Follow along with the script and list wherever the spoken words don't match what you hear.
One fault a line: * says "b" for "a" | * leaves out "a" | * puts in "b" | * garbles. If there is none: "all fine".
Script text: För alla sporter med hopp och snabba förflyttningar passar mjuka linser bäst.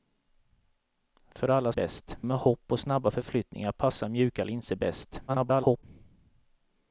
* says "bäst" for "sporter"
* garbles